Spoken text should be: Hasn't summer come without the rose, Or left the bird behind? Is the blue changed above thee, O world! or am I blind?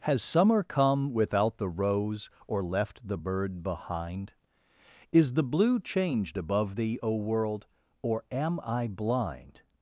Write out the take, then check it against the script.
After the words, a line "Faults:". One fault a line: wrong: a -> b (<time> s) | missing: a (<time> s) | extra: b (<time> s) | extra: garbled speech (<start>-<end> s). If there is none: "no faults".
Has summer come without the rose, Or left the bird behind? Is the blue changed above thee, O world! or am I blind?
Faults:
wrong: Hasn't -> Has (0.0 s)